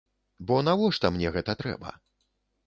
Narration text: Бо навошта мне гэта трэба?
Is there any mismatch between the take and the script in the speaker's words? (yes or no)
no